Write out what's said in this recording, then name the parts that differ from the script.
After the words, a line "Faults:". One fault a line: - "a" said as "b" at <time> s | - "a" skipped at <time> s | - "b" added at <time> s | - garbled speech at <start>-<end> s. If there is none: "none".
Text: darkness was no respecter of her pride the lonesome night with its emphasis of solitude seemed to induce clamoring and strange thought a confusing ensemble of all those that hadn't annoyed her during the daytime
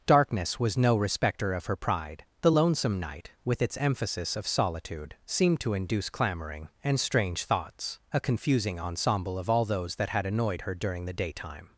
darkness was no respecter of her pride the lonesome night with its emphasis of solitude seemed to induce clamoring and strange thoughts a confusing ensemble of all those that had annoyed her during the daytime
Faults:
- "thought" said as "thoughts" at 7.4 s
- "hadn't" said as "had" at 10.1 s